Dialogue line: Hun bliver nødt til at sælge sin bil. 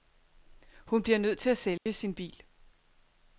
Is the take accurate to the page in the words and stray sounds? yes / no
no